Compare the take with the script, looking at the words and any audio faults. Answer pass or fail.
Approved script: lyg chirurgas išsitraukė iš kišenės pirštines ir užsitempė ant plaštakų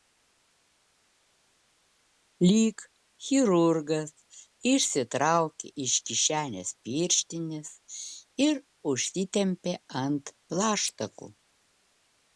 pass